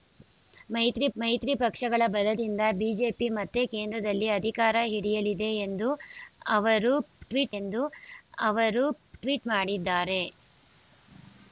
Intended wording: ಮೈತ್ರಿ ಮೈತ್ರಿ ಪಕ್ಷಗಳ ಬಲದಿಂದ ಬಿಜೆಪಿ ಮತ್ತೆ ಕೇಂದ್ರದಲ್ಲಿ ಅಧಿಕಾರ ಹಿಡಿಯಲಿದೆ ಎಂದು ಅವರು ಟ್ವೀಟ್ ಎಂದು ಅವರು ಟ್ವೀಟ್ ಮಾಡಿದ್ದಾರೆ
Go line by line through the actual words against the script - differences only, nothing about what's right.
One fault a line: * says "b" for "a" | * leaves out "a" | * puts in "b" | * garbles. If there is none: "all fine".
all fine